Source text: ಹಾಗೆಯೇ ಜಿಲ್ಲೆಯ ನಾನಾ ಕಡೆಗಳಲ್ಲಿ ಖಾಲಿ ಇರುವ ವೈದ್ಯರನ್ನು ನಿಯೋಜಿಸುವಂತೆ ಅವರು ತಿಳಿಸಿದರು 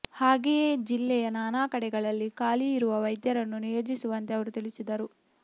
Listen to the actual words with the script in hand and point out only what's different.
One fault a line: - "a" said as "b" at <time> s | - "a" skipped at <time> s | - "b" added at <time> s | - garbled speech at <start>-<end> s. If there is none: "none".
none